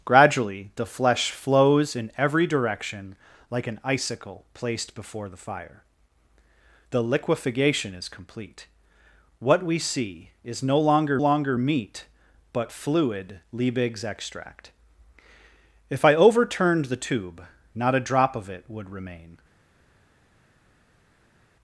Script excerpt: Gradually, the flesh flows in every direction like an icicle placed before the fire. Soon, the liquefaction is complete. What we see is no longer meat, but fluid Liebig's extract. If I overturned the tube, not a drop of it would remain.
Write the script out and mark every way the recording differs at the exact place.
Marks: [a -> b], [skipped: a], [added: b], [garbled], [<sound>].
Gradually, the flesh flows in every direction like an icicle placed before the fire. [skipped: Soon,] the liquefaction is complete. What we see is no longer [added: longer] meat, but fluid Liebig's extract. If I overturned the tube, not a drop of it would remain.